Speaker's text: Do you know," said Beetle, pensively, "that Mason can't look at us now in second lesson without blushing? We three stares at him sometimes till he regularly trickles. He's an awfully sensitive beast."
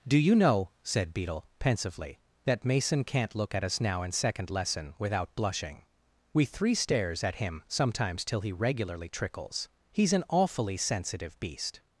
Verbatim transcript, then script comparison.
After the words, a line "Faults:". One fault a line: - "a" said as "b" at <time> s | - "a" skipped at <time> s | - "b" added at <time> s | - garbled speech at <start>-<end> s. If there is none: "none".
Do you know," said Beetle, pensively, "that Mason can't look at us now in second lesson without blushing? We three stares at him sometimes till he regularly trickles. He's an awfully sensitive beast."
Faults:
none